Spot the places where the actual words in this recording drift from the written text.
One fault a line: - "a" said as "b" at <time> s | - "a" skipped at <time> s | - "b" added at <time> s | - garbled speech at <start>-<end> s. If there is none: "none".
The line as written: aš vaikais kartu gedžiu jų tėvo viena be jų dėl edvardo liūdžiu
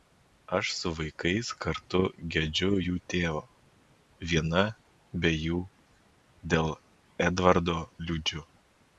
- "su" added at 0.8 s